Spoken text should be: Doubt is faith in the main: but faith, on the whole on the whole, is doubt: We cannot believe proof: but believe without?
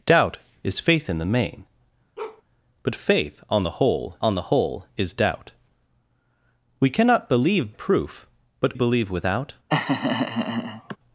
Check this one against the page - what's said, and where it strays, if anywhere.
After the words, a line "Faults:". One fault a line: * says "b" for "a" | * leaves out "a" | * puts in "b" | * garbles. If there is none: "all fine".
Doubt is faith in the main: but faith, on the whole on the whole, is doubt: We cannot believe proof: but believe without?
Faults:
all fine